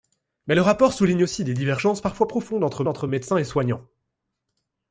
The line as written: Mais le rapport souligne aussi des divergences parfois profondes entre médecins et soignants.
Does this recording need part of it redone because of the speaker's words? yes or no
yes